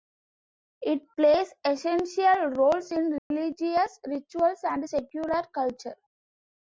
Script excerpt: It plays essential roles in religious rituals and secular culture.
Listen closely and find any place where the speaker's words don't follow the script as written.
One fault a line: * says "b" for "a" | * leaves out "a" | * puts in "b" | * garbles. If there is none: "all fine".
all fine